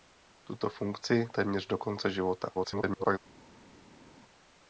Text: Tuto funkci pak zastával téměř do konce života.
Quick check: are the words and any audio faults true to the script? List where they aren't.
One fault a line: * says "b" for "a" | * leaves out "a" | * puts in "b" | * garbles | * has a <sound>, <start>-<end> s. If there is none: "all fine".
* leaves out "pak zastával"
* garbles